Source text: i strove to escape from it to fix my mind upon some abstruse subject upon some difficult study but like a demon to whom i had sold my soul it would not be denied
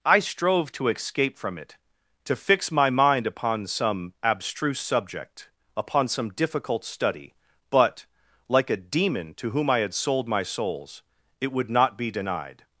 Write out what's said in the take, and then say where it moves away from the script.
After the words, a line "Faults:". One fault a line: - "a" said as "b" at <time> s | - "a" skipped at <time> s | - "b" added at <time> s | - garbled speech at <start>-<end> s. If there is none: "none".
i strove to escape from it to fix my mind upon some abstruse subject upon some difficult study but like a demon to whom i had sold my souls it would not be denied
Faults:
- "soul" said as "souls" at 10.4 s